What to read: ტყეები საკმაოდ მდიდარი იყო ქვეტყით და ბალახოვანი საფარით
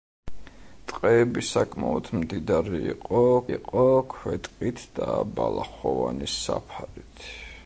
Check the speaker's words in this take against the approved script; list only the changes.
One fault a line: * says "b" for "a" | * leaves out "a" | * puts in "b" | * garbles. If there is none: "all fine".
* puts in "იყო"